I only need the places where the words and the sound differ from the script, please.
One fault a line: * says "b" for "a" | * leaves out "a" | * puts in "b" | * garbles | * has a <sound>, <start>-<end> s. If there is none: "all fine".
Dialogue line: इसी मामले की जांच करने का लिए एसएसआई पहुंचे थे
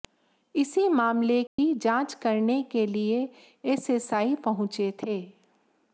* has a dropout, 1.5-1.6 s
* says "के" for "का"